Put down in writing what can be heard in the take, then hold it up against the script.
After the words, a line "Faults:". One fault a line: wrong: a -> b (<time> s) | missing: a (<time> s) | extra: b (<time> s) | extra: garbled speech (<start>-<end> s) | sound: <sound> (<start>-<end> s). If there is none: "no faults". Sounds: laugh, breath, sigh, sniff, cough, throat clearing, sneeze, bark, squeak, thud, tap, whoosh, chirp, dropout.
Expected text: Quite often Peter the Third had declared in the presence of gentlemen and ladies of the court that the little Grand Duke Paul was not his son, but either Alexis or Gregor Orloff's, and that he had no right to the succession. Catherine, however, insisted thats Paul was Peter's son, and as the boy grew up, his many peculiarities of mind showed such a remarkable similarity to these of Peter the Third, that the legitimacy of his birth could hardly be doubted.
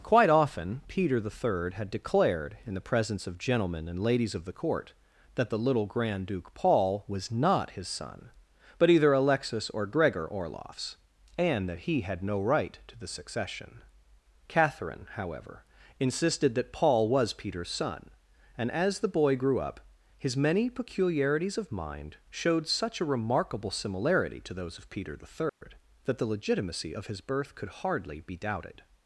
Quite often Peter the Third had declared in the presence of gentlemen and ladies of the court that the little Grand Duke Paul was not his son, but either Alexis or Gregor Orloff's, and that he had no right to the succession. Catherine, however, insisted that Paul was Peter's son, and as the boy grew up, his many peculiarities of mind showed such a remarkable similarity to those of Peter the Third, that the legitimacy of his birth could hardly be doubted.
Faults:
wrong: thats -> that (16.5 s)
wrong: these -> those (24.5 s)
sound: dropout (25.5-25.6 s)